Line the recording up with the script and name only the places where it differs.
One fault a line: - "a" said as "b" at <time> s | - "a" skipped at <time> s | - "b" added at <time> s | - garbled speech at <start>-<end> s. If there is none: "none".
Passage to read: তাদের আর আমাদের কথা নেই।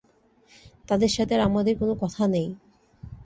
- "সাথে" added at 1.1 s
- "কোনো" added at 1.8 s